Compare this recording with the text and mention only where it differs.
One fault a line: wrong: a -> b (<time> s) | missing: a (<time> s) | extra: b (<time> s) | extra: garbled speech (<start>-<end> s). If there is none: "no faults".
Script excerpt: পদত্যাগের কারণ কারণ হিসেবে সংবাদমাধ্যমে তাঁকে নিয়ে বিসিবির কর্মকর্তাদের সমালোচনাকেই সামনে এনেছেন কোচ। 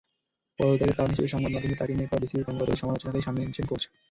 missing: কারণ (1.1 s)
extra: করা (2.1 s)